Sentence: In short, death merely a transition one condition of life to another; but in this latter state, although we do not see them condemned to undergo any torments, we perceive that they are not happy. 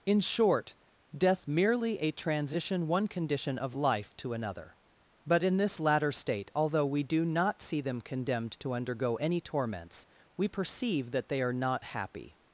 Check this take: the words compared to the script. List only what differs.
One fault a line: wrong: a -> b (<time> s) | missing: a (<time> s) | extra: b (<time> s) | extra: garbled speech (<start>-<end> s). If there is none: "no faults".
no faults